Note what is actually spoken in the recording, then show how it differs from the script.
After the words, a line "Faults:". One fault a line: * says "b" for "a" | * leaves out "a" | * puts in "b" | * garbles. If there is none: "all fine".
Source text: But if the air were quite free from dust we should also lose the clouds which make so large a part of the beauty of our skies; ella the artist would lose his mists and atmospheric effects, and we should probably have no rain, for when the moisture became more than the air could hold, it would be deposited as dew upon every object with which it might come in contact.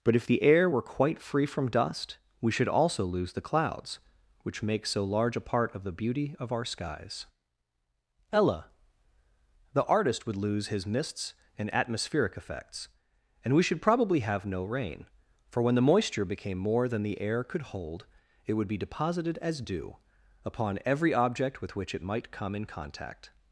But if the air were quite free from dust we should also lose the clouds which make so large a part of the beauty of our skies; ella the artist would lose his mists and atmospheric effects, and we should probably have no rain, for when the moisture became more than the air could hold, it would be deposited as dew upon every object with which it might come in contact.
Faults:
all fine